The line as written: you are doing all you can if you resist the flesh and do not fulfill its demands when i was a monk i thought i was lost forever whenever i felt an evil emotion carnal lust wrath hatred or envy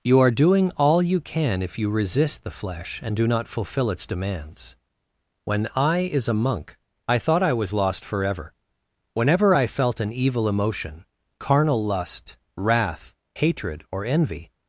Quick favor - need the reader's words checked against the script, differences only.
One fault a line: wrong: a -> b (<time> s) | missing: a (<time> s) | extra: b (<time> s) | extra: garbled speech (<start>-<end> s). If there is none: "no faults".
wrong: was -> is (6.0 s)